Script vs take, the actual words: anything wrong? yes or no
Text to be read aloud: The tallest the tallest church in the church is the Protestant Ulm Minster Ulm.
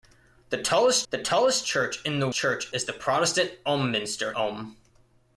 no